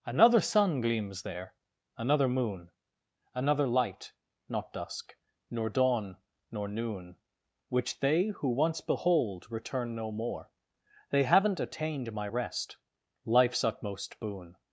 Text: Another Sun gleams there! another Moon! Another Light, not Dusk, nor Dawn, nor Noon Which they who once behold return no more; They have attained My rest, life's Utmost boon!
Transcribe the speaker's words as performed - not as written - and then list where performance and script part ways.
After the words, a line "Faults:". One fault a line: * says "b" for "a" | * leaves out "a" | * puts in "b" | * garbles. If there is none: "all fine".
Another Sun gleams there! another Moon! Another Light, not Dusk, nor Dawn, nor Noon Which they who once behold return no more; They haven't attained My rest, life's Utmost boon!
Faults:
* says "haven't" for "have"